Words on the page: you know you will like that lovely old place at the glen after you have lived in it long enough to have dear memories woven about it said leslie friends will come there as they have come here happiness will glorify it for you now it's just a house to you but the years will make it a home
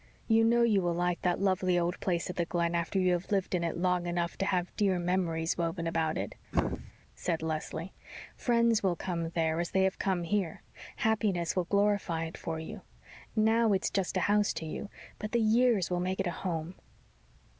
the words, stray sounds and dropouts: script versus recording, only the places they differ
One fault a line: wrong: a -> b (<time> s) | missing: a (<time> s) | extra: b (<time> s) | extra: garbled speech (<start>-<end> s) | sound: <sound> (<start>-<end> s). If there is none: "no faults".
sound: throat clearing (6.5-6.9 s)